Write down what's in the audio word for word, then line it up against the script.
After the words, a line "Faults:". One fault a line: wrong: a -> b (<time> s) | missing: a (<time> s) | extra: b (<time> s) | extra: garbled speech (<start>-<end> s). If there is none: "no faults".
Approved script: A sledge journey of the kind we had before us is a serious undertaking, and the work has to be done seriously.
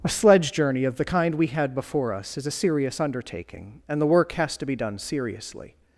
A sledge journey of the kind we had before us is a serious undertaking, and the work has to be done seriously.
Faults:
no faults